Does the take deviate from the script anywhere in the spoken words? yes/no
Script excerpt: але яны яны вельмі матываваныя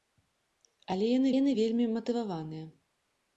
no